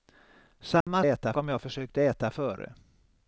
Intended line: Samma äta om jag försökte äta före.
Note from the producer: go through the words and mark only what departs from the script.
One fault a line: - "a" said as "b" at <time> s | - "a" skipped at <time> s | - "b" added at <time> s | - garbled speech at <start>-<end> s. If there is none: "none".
none